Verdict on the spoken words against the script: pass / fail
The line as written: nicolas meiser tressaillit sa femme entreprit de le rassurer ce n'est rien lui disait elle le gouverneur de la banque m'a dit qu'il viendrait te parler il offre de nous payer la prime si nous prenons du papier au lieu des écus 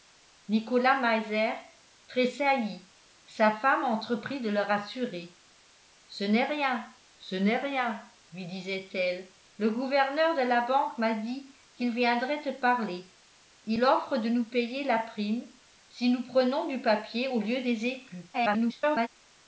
fail